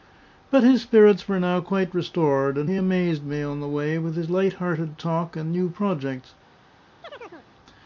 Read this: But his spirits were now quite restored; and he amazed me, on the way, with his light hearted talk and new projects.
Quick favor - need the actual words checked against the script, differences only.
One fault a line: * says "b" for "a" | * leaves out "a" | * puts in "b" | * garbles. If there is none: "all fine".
all fine